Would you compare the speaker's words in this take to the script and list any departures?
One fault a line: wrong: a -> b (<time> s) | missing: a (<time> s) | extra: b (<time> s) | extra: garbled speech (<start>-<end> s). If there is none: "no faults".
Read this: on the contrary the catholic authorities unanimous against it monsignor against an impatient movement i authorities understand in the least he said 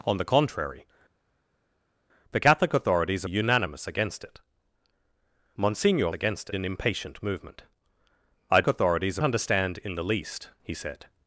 no faults